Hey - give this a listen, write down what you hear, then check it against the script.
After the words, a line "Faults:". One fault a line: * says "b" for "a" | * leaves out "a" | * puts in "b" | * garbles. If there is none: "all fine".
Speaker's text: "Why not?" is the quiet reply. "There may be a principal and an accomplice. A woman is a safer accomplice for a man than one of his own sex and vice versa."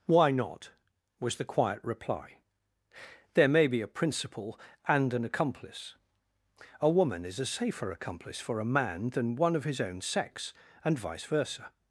"Why not?" was the quiet reply. "There may be a principal and an accomplice. A woman is a safer accomplice for a man than one of his own sex and vice versa."
Faults:
* says "was" for "is"